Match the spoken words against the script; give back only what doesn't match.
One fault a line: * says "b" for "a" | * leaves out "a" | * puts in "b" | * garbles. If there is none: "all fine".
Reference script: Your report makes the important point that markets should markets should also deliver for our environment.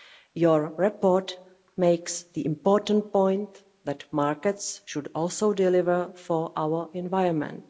* leaves out "markets should"